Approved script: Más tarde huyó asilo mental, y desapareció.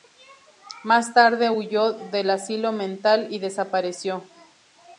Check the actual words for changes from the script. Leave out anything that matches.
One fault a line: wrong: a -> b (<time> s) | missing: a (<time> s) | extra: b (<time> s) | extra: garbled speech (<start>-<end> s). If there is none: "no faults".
extra: del (1.9 s)